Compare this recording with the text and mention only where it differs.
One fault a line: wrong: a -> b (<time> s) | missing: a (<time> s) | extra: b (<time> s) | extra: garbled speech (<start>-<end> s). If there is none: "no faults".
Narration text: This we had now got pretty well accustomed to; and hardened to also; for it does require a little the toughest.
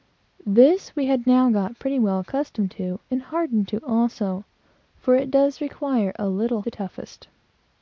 no faults